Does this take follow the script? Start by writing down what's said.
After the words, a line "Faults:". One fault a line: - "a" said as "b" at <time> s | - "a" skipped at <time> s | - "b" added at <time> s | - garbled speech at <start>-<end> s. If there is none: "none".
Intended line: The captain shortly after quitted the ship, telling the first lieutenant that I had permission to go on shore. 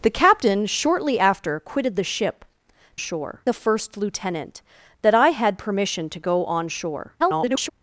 The captain shortly after quitted the ship, shore the first lieutenant that I had permission to go on shore. [garbled]
Faults:
- "telling" said as "shore" at 2.9 s
- garbled speech at 7.2-7.7 s